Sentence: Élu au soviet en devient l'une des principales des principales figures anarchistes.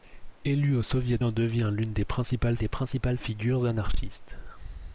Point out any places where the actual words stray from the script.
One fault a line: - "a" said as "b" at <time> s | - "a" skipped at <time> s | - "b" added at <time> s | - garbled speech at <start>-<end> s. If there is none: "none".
none